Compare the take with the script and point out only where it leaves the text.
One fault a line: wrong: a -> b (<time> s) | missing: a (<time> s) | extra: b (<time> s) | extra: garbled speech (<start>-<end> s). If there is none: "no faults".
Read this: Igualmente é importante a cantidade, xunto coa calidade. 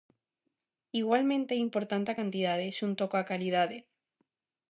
no faults